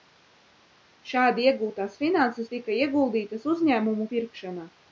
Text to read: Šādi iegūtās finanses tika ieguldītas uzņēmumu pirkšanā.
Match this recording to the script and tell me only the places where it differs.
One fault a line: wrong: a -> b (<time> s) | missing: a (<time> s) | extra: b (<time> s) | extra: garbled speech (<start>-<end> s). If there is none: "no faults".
no faults